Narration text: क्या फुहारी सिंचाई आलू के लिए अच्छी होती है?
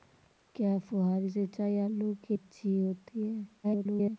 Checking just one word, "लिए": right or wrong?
wrong